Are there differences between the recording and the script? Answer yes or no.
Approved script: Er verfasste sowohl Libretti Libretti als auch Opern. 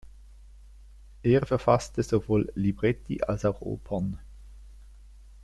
yes